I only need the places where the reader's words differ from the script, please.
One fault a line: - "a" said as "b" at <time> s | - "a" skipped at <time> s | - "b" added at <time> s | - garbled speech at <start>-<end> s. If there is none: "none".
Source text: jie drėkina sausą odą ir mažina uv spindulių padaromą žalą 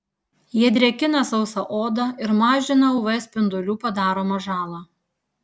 none